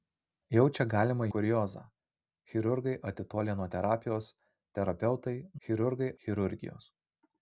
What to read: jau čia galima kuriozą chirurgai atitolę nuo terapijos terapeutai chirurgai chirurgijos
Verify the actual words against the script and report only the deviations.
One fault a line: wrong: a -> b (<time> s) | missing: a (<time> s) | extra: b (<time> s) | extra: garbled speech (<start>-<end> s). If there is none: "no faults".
no faults